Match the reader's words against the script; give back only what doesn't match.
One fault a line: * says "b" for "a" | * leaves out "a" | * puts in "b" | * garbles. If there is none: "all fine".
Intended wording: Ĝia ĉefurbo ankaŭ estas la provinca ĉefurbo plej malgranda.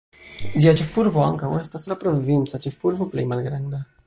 all fine